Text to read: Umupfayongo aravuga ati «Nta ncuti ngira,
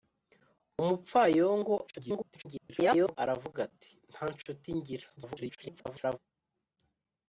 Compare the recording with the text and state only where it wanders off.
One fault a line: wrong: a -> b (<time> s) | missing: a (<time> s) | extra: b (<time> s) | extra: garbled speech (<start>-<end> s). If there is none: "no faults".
extra: garbled speech (1.9-3.2 s)
extra: garbled speech (5.2-6.2 s)